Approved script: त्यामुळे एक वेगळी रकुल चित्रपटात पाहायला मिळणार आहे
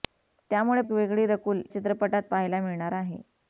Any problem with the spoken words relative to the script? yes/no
no